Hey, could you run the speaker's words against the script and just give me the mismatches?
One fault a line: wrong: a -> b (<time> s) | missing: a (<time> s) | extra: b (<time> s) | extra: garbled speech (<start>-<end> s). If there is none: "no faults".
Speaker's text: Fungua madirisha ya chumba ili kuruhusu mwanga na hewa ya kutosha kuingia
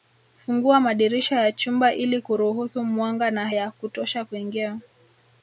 missing: hewa (3.5 s)